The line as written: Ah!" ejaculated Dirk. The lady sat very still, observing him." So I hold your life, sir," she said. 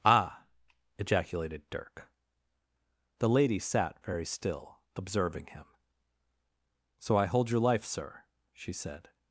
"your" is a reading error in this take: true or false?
false